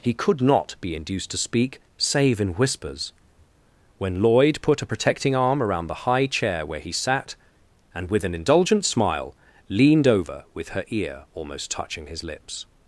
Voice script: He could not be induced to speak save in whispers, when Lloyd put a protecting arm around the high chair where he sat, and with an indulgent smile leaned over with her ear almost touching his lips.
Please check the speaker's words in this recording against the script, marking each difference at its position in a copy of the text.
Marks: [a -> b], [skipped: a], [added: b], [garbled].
He could not be induced to speak save in whispers, when Lloyd put a protecting arm around the high chair where he sat, and with an indulgent smile leaned over with her ear almost touching his lips.